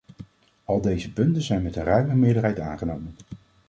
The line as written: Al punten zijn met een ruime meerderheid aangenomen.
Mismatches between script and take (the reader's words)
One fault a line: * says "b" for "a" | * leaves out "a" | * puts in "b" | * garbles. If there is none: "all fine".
* puts in "deze"